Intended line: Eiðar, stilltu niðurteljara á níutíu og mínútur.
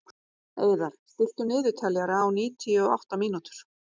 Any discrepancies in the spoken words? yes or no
yes